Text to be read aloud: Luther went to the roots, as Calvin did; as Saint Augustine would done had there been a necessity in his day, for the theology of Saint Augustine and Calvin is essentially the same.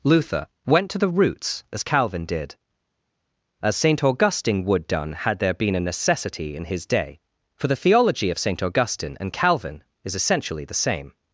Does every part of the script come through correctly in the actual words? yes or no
yes